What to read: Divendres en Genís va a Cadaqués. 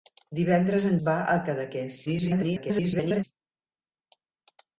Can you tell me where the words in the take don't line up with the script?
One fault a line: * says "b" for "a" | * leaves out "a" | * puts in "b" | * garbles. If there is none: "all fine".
* leaves out "Genís"
* garbles